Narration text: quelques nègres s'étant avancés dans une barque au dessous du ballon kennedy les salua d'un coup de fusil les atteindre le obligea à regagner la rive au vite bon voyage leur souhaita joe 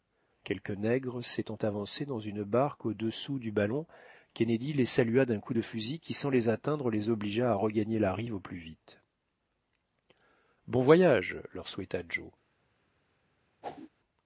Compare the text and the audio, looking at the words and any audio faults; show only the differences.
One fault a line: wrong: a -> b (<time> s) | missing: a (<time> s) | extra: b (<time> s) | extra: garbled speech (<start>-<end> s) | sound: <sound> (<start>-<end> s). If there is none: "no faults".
extra: qui sans (6.0 s)
wrong: le -> les (6.9 s)
extra: plus (8.4 s)
sound: whoosh (13.6-13.9 s)